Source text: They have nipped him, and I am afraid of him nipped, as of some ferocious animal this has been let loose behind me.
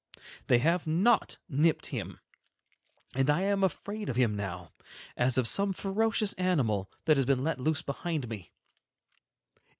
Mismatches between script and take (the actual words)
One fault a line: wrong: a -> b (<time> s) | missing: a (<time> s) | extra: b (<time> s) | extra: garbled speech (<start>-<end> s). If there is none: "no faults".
extra: not (0.9 s)
wrong: nipped -> now (4.4 s)
wrong: this -> that (7.0 s)